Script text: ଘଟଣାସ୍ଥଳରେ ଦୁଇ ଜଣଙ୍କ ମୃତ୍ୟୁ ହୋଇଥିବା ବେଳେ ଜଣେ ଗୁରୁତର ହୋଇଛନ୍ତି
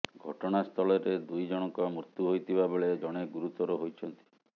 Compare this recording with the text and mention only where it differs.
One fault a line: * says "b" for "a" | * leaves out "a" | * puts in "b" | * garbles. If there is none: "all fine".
all fine